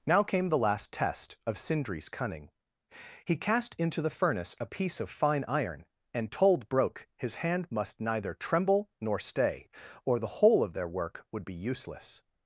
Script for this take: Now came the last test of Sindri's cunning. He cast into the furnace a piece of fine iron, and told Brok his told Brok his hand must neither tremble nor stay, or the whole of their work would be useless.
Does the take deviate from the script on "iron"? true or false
false